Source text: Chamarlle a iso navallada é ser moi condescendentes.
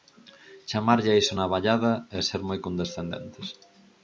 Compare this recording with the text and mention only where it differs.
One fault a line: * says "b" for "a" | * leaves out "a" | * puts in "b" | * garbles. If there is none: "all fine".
all fine